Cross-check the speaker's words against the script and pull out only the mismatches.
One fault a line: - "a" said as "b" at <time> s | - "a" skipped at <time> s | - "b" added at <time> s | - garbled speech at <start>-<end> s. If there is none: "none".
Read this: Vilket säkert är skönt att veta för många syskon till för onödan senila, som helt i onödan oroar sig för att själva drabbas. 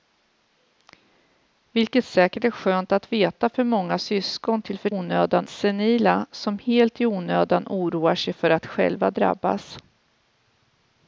none